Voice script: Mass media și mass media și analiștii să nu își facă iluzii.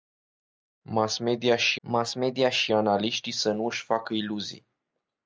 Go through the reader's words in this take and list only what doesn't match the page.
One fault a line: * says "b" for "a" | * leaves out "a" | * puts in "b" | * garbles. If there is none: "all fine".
all fine